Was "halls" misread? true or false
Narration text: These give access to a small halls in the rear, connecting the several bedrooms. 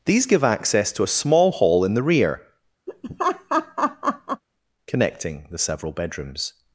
true